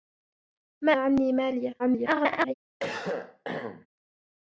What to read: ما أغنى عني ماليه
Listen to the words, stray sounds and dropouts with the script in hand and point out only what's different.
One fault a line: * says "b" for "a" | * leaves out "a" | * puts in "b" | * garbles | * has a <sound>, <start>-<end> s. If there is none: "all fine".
* leaves out "أغنى"
* garbles
* has a cough, 2.8-3.9 s